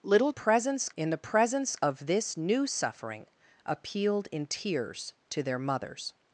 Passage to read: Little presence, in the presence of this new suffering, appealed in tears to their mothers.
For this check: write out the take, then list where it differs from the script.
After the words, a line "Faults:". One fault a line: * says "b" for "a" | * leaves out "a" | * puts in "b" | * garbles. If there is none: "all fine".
Little presence, in the presence of this new suffering, appealed in tears to their mothers.
Faults:
all fine